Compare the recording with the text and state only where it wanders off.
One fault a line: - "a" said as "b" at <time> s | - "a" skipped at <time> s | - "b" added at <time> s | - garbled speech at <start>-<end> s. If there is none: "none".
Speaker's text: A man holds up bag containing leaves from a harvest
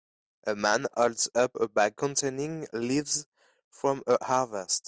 - "a" added at 1.5 s